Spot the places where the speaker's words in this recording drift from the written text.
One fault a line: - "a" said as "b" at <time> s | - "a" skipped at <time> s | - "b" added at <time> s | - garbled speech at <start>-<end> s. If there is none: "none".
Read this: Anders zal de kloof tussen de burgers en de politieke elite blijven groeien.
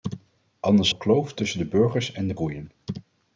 - "zal" skipped at 0.9 s
- "politieke elite blijven" skipped at 2.3 s